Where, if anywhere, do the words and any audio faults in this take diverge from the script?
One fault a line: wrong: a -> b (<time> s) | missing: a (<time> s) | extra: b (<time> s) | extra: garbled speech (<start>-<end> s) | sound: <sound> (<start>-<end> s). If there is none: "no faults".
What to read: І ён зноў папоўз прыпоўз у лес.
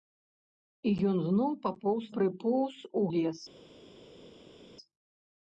no faults